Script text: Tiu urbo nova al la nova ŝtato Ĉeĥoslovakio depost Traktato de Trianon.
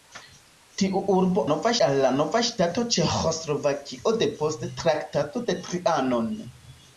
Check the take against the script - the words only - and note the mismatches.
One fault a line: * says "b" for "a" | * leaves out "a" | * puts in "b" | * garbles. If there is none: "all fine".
all fine